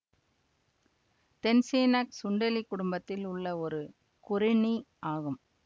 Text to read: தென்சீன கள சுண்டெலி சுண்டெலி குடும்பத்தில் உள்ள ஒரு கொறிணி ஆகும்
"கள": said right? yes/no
no